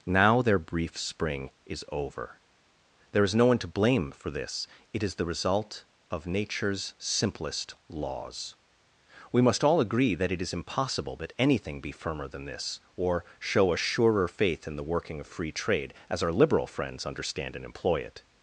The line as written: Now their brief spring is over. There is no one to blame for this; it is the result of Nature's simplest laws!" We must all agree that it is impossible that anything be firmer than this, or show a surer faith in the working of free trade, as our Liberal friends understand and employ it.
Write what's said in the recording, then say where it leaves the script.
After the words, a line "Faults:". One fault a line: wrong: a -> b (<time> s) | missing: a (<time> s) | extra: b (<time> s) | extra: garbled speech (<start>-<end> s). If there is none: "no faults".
Now their brief spring is over. There is no one to blame for this; it is the result of Nature's simplest laws!" We must all agree that it is impossible that anything be firmer than this, or show a surer faith in the working of free trade, as our Liberal friends understand and employ it.
Faults:
no faults